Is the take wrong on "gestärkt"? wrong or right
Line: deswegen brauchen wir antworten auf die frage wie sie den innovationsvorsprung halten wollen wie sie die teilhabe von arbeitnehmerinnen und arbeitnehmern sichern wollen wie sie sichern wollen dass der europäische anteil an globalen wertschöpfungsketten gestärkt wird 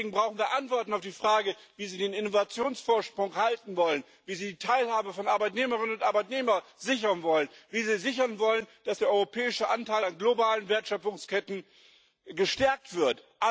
right